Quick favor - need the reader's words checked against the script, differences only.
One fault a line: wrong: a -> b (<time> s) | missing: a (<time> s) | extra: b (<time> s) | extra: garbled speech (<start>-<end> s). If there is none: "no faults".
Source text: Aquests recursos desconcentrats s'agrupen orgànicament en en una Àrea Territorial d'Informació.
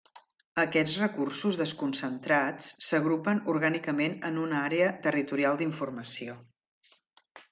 missing: en (4.4 s)